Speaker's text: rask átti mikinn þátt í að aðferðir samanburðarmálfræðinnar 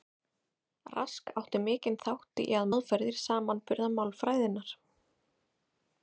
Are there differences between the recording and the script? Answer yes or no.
no